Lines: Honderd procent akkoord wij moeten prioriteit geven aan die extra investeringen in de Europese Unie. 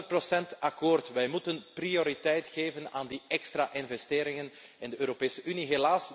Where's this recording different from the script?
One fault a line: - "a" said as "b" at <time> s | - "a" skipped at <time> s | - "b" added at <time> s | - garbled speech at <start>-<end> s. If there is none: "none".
none